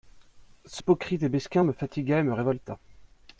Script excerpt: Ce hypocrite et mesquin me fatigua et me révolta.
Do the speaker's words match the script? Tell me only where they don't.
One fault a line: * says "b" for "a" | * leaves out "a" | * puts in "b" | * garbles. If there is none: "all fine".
all fine